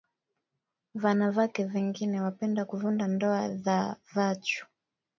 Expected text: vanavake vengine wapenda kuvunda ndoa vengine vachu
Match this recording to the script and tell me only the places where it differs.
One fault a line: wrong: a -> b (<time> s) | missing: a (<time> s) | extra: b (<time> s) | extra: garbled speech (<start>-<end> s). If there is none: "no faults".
wrong: vengine -> dha (3.5 s)